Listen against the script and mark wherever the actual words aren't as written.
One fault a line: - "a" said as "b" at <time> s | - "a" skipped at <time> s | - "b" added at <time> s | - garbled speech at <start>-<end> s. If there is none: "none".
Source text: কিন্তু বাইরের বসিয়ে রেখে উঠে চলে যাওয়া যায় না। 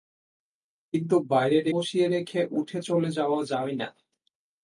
none